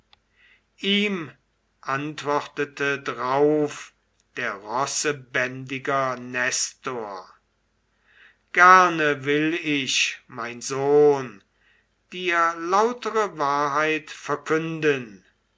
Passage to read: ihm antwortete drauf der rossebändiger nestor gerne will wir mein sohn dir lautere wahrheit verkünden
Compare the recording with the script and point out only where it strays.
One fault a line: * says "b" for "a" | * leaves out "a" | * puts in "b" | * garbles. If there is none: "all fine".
* says "ich" for "wir"